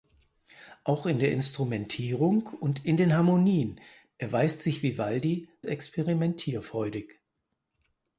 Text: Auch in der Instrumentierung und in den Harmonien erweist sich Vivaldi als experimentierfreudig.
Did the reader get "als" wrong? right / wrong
wrong